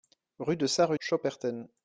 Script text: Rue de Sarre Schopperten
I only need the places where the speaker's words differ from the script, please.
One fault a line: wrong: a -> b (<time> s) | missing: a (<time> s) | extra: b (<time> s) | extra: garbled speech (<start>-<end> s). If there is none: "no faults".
no faults